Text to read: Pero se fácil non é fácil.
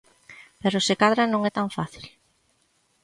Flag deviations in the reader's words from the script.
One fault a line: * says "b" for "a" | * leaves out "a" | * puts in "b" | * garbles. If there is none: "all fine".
* says "cadra" for "fácil"
* puts in "tan"